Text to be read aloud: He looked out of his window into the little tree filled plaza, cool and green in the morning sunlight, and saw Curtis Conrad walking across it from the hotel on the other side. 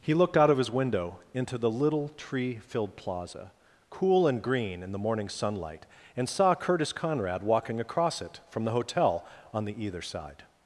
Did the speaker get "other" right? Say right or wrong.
wrong